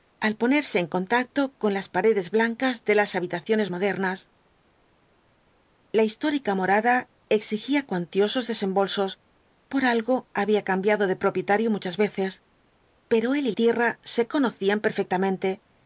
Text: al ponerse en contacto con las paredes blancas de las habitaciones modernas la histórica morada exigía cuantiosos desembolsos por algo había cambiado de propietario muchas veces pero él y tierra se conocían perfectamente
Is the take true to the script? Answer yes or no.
yes